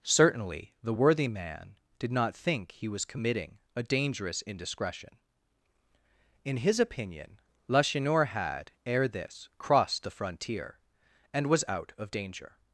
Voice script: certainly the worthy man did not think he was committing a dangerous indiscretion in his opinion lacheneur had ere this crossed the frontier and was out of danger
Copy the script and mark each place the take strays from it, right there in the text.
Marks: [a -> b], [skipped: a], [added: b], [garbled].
certainly the worthy man did not think he was committing a dangerous indiscretion in his opinion lacheneur had ere this crossed the frontier and was out of danger